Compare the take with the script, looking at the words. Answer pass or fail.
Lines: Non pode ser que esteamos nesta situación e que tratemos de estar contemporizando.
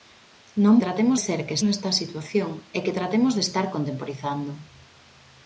fail